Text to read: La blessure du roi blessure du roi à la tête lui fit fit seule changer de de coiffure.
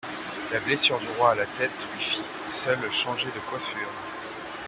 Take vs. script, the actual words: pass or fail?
fail